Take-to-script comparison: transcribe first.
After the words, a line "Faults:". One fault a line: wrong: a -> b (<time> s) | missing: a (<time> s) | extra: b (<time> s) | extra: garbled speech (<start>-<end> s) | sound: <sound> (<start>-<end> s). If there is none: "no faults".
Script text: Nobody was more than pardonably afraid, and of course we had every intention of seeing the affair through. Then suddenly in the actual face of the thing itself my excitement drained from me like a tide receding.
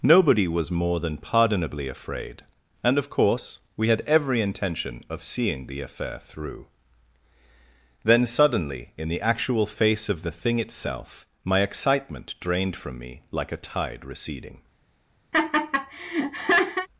Nobody was more than pardonably afraid, and of course we had every intention of seeing the affair through. Then suddenly in the actual face of the thing itself my excitement drained from me like a tide receding.
Faults:
sound: laugh (15.3-16.9 s)